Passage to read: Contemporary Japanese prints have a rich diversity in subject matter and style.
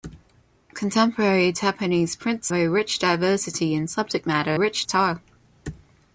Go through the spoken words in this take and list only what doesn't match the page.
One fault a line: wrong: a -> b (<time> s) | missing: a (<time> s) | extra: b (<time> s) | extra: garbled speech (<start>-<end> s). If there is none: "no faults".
missing: have (2.5 s)
wrong: and -> rich (4.5 s)